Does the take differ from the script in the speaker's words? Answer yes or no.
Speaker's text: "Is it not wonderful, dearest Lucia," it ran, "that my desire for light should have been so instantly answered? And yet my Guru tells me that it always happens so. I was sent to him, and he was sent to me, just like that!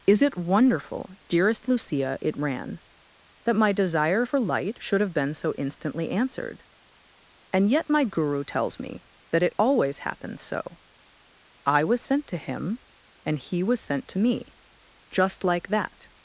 yes